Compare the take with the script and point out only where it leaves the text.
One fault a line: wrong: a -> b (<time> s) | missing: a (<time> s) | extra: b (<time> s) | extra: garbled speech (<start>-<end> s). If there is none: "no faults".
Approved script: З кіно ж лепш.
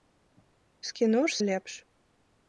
no faults